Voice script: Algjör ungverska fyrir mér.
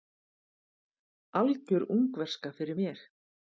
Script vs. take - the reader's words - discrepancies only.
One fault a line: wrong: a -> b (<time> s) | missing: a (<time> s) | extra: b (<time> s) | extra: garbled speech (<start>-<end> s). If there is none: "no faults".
no faults